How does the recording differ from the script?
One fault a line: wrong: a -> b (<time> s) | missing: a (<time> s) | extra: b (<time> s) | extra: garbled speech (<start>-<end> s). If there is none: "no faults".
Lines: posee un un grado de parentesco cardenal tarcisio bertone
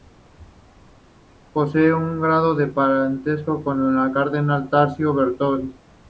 missing: un (2.2 s)
extra: con el (3.6 s)